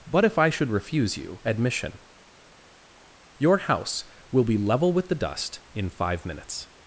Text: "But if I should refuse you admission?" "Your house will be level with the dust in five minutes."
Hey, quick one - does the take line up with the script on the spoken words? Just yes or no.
yes